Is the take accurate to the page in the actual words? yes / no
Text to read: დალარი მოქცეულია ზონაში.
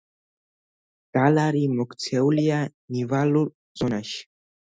no